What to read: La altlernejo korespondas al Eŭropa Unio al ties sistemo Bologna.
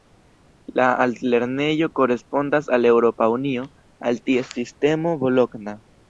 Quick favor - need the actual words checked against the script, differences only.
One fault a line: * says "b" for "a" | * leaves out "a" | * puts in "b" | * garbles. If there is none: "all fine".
all fine